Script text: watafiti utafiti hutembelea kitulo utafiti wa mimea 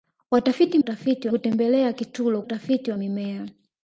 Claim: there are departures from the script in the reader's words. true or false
false